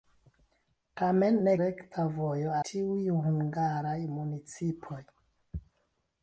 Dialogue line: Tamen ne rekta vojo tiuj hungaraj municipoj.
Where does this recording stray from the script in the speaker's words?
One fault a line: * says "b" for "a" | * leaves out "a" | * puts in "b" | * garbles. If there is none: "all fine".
all fine